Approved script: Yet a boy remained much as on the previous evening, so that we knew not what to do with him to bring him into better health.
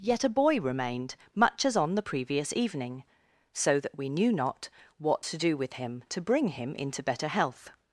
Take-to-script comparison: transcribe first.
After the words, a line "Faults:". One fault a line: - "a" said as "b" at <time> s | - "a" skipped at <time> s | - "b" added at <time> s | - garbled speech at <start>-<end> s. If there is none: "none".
Yet a boy remained much as on the previous evening, so that we knew not what to do with him to bring him into better health.
Faults:
none